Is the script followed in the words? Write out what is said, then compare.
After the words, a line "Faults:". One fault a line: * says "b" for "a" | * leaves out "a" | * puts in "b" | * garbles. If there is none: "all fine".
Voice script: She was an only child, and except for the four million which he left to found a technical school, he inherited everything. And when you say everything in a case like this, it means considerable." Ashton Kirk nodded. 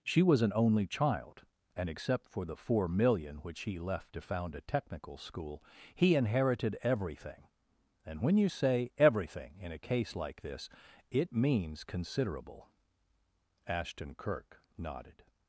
She was an only child, and except for the four million which he left to found a technical school, he inherited everything. And when you say everything in a case like this, it means considerable." Ashton Kirk nodded.
Faults:
all fine